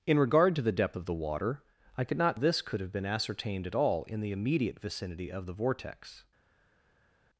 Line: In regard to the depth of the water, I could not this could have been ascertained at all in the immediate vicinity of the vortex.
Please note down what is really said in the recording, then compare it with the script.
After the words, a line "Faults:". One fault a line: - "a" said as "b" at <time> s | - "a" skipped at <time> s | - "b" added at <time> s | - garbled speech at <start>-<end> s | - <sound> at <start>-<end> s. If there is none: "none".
In regard to the depth of the water, I could not this could have been ascertained at all in the immediate vicinity of the vortex.
Faults:
none